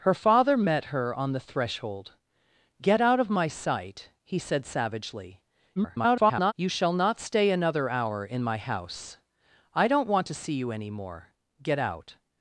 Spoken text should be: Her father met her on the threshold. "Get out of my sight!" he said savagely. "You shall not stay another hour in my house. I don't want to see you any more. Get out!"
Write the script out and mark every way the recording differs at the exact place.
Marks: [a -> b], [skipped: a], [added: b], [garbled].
Her father met her on the threshold. "Get out of my sight!" he said savagely. [garbled] "You shall not stay another hour in my house. I don't want to see you any more. Get out!"